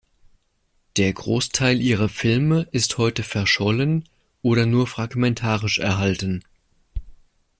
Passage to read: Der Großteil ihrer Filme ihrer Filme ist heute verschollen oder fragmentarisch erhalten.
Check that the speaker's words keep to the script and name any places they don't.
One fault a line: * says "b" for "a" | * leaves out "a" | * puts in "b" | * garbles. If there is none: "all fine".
* leaves out "ihrer Filme"
* puts in "nur"